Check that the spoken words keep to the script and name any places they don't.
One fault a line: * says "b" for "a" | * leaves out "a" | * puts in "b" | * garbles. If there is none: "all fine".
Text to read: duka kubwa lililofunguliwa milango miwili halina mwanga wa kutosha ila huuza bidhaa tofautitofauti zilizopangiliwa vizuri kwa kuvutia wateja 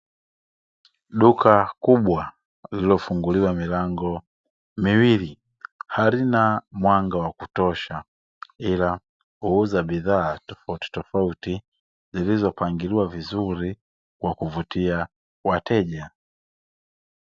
all fine